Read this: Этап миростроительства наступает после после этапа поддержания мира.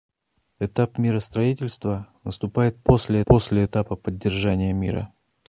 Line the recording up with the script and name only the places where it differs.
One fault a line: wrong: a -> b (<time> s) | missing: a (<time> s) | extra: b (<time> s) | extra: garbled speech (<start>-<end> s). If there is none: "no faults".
no faults